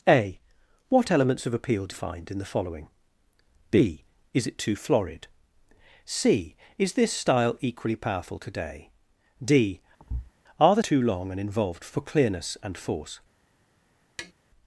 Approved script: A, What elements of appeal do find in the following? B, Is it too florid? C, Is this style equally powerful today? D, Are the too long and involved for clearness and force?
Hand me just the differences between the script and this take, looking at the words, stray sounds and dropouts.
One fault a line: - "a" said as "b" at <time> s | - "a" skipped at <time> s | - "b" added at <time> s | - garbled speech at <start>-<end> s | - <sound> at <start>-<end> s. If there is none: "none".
- thud at 10.0-10.3 s
- tap at 14.2-14.3 s